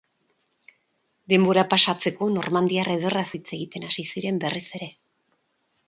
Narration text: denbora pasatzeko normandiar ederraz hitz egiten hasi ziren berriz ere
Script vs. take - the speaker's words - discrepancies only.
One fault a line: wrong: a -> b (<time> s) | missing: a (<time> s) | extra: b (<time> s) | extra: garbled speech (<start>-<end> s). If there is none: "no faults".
no faults